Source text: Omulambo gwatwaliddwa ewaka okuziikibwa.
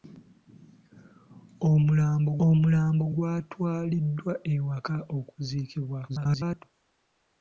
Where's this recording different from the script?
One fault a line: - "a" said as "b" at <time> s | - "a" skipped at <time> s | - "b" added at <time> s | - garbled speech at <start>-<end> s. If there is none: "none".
- "omulambo" added at 2.5 s
- garbled speech at 6.1-6.6 s